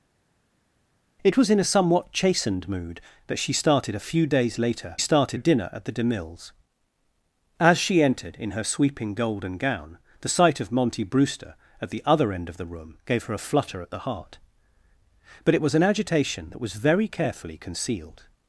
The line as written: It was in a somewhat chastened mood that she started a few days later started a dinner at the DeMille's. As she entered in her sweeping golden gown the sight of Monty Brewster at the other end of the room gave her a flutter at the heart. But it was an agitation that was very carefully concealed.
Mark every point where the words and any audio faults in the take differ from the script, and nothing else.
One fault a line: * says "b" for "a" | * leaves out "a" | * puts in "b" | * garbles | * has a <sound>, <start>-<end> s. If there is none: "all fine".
all fine